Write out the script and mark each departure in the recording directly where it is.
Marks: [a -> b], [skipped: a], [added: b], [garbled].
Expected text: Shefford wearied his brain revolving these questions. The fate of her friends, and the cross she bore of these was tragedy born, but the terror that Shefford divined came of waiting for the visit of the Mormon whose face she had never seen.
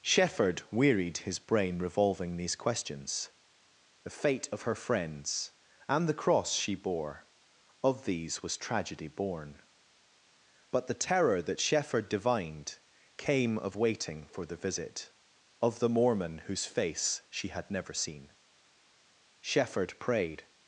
Shefford wearied his brain revolving these questions. The fate of her friends, and the cross she bore of these was tragedy born, but the terror that Shefford divined came of waiting for the visit of the Mormon whose face she had never seen. [added: Shefford prayed]